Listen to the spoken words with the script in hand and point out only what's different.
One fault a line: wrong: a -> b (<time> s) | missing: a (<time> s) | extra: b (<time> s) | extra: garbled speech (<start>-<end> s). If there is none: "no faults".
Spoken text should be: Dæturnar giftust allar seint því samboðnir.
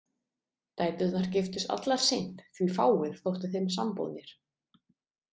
extra: fáir þóttu þeim (2.8 s)